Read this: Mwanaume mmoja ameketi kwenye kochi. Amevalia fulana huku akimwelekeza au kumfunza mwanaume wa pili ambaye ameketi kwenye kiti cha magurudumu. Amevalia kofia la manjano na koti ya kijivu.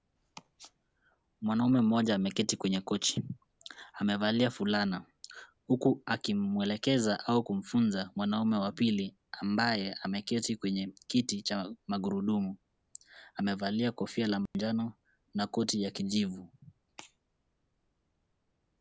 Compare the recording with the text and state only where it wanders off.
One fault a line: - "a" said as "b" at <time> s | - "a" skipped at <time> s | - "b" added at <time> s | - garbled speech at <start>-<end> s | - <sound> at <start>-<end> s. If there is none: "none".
- dropout at 14.5-14.5 s